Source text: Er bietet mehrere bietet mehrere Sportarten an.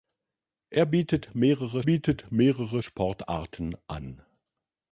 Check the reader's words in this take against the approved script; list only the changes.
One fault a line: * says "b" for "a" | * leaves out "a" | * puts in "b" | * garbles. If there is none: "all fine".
all fine